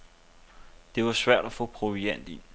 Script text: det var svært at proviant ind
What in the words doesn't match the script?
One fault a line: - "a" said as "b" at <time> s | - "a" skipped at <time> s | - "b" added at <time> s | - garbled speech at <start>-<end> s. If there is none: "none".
- "få" added at 1.5 s